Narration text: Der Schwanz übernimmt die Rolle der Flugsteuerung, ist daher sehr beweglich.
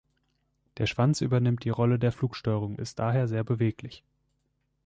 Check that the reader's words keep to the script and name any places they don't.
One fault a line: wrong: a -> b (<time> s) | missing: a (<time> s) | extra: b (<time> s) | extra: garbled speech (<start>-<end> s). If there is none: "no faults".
no faults